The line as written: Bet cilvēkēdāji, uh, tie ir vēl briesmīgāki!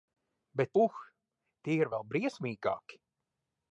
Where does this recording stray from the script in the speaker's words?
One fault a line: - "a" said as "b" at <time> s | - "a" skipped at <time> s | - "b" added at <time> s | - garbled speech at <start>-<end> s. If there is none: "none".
- "cilvēkēdāji" skipped at 0.7 s